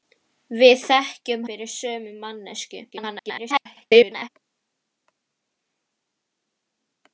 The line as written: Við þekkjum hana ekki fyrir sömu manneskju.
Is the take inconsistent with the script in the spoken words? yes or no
yes